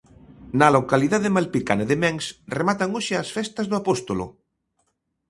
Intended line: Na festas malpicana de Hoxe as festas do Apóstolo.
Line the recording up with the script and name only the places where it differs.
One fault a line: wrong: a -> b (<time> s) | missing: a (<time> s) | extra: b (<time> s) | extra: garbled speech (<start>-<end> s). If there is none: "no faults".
wrong: festas -> localidade (0.7 s)
extra: Mens rematan (2.0 s)